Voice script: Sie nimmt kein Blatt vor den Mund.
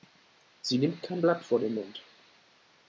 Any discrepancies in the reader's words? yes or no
no